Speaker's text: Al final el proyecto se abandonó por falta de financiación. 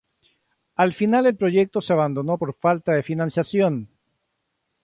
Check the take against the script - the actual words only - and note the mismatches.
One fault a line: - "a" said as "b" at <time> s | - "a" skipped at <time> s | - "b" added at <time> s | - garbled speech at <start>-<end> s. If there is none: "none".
none